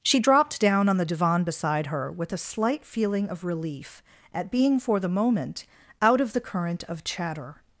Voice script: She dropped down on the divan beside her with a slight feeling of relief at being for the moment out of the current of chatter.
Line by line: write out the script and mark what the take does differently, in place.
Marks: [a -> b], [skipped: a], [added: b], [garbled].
She dropped down on the divan beside her with a slight feeling of relief at being for the moment out of the current of chatter.